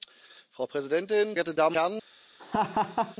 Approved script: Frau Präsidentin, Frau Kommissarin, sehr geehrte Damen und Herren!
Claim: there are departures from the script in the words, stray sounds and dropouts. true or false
true